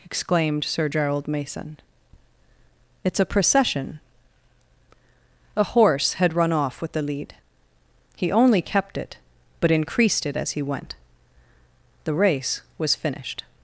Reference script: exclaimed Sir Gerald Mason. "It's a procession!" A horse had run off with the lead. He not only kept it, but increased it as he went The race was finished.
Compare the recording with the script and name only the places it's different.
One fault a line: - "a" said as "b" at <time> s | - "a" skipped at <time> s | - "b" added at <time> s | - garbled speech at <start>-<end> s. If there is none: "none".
- "not" skipped at 8.3 s